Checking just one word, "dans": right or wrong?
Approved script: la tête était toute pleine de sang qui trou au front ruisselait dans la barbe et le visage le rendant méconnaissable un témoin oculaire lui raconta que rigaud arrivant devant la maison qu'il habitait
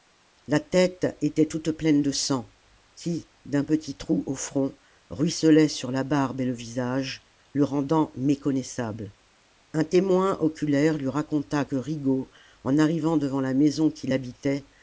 wrong